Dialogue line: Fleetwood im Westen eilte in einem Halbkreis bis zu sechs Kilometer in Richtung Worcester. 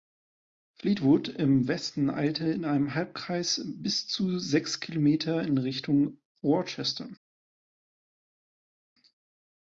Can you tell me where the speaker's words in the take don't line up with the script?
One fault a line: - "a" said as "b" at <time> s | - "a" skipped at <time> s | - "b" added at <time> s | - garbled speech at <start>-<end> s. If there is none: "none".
none